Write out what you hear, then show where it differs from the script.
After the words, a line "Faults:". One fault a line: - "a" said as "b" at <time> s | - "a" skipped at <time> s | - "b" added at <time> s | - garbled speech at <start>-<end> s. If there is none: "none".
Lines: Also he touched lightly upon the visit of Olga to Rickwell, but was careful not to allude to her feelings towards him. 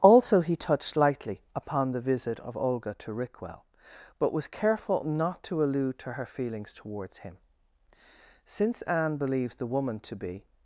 Also he touched lightly upon the visit of Olga to Rickwell, but was careful not to allude to her feelings towards him. Since Anne believed the woman to be
Faults:
- "Since Anne believed the woman to be" added at 8.4 s